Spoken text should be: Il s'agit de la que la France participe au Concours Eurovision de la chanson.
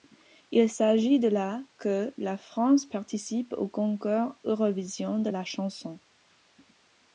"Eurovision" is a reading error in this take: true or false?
false